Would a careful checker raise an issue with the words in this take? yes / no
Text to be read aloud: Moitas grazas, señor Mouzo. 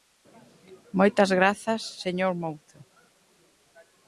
no